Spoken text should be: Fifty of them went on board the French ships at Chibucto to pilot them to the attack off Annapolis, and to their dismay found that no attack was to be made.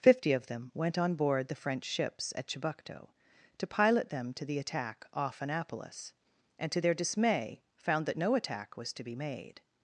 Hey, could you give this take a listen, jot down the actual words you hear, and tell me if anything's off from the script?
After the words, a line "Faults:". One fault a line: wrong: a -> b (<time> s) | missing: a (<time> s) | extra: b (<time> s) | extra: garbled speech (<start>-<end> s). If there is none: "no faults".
Fifty of them went on board the French ships at Chibucto to pilot them to the attack off Annapolis, and to their dismay found that no attack was to be made.
Faults:
no faults